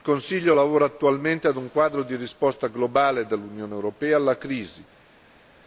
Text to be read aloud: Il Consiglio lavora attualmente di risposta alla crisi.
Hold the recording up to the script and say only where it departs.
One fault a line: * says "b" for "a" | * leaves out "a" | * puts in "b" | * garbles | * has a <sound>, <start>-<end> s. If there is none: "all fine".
* puts in "ad un quadro"
* puts in "globale dell'Unione europea"